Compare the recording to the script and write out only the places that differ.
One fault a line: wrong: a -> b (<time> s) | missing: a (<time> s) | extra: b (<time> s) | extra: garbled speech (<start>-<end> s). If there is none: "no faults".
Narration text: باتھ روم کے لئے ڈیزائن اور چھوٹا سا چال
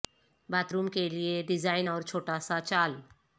no faults